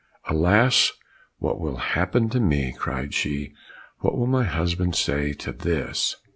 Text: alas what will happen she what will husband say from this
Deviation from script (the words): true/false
true